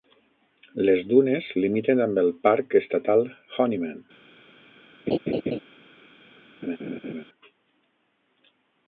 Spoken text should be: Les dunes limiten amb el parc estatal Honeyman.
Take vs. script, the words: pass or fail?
pass